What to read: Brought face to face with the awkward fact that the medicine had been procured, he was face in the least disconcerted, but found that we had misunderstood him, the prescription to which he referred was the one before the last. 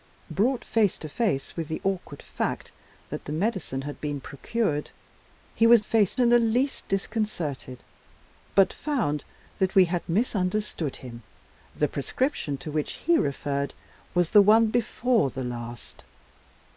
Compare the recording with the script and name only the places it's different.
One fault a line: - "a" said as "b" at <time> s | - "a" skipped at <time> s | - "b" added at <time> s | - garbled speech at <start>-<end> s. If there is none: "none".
none